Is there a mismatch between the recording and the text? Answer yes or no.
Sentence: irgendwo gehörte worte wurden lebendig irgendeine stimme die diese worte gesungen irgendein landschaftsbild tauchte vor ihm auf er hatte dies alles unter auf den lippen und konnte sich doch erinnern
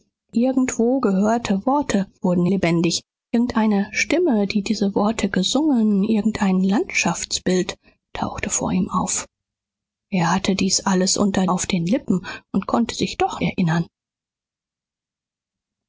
no